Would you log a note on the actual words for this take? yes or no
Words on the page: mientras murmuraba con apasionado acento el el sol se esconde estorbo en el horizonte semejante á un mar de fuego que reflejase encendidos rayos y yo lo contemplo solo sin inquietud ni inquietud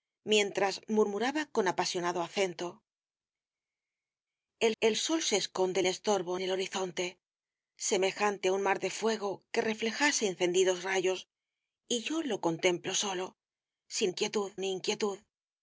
no